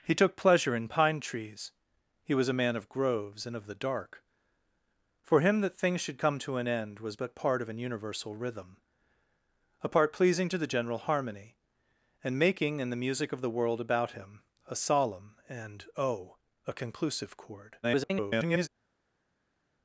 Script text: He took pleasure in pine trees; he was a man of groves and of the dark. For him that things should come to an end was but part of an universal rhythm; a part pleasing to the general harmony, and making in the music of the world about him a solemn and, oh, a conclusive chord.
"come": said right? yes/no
yes